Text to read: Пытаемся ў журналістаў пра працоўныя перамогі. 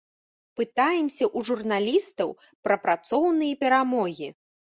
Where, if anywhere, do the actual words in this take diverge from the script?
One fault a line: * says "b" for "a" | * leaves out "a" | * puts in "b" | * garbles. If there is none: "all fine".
all fine